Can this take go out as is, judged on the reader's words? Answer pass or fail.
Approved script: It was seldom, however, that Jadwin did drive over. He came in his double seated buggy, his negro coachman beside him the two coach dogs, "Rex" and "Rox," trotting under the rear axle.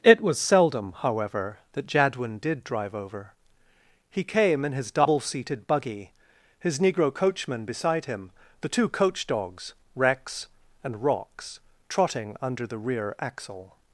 pass